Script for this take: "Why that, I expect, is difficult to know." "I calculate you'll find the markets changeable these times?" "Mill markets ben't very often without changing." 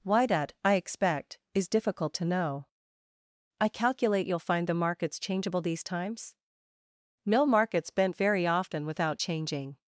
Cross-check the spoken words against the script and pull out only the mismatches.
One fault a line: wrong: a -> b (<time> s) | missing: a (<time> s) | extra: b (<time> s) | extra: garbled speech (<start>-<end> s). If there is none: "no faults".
no faults